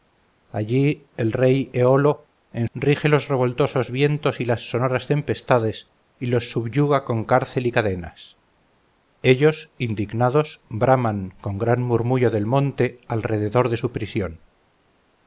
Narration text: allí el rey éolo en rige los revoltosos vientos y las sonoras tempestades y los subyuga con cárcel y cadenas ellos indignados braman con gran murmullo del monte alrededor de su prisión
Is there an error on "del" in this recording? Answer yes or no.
no